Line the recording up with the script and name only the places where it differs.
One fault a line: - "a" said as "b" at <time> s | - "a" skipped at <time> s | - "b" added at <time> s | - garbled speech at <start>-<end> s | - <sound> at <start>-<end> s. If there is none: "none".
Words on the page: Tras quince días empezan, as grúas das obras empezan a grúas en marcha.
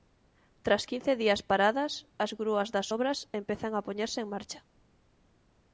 - "empezan" said as "paradas" at 1.5 s
- "grúas" said as "poñerse" at 3.9 s